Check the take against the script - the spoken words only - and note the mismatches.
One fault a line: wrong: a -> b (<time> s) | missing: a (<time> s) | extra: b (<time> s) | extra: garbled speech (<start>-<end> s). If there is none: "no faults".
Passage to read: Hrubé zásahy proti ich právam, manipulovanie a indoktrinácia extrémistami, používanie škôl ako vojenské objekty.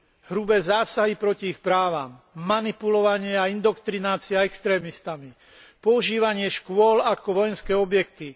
no faults